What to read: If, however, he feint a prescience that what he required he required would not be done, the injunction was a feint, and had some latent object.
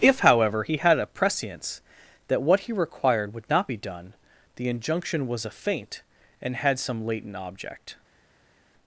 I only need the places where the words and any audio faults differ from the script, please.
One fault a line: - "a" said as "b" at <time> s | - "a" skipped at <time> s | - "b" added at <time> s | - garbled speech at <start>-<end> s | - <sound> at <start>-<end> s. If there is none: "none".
- "feint" said as "had" at 0.8 s
- "he required" skipped at 3.3 s